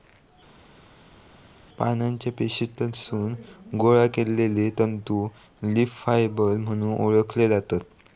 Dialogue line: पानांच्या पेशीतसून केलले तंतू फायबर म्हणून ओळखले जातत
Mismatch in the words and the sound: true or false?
true